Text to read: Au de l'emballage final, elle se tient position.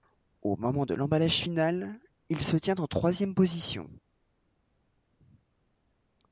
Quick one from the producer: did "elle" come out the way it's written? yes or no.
no